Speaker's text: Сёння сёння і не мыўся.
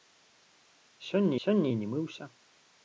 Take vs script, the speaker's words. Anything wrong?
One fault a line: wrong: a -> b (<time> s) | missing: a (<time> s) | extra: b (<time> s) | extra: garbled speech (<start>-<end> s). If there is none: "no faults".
no faults